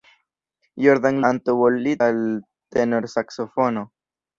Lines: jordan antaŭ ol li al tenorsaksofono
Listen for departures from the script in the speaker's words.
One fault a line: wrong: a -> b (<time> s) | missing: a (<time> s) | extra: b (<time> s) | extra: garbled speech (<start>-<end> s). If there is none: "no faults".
no faults